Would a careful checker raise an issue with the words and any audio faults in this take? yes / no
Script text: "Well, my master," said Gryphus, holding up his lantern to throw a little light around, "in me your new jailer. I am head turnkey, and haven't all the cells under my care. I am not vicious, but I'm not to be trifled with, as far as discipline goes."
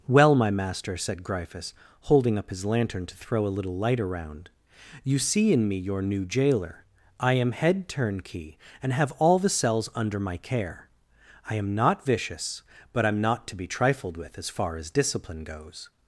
yes